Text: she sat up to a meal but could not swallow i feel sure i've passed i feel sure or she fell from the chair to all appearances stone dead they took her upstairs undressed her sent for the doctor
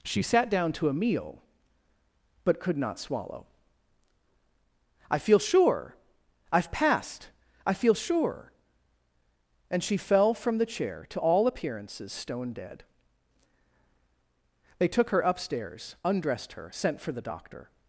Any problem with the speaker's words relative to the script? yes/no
yes